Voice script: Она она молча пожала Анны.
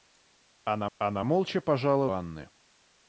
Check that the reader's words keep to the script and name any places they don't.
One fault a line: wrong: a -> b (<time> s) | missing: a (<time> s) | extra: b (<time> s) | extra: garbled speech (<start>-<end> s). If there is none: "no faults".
no faults